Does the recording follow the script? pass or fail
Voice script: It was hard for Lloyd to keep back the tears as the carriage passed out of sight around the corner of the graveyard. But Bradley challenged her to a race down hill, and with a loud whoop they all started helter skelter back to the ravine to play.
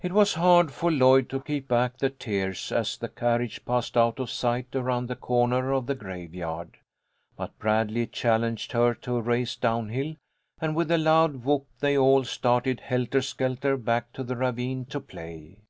pass